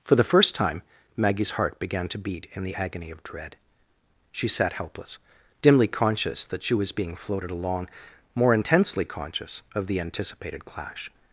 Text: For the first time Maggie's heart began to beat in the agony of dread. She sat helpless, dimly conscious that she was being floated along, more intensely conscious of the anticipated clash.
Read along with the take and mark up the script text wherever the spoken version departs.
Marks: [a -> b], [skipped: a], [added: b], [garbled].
For the first time Maggie's heart began to beat in the agony of dread. She sat helpless, dimly conscious that she was being floated along, more intensely conscious of the anticipated clash.